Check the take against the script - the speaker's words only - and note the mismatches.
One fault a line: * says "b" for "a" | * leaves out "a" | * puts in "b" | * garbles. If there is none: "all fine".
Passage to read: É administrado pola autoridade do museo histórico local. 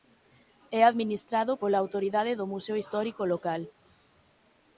all fine